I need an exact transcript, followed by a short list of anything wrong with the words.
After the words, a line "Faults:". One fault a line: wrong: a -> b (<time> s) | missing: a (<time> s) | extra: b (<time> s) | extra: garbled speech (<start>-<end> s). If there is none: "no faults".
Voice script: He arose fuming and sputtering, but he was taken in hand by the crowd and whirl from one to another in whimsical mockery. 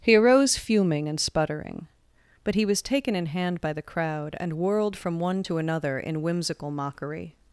He arose fuming and sputtering, but he was taken in hand by the crowd and whirled from one to another in whimsical mockery.
Faults:
wrong: whirl -> whirled (4.6 s)